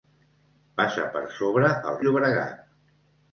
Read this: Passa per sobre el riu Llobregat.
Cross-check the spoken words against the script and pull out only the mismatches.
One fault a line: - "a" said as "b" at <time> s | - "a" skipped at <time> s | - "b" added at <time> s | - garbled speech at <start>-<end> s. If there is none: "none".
- "riu" skipped at 2.0 s